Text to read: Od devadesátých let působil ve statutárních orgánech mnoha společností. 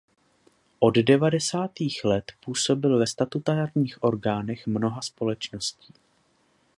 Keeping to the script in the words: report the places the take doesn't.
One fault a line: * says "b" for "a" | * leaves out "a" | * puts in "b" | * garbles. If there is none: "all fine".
all fine